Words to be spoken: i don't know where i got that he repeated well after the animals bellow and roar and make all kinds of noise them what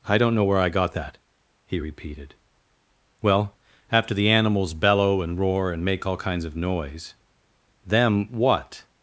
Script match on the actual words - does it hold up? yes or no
yes